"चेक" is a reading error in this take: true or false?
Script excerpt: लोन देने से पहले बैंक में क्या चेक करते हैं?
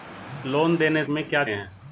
true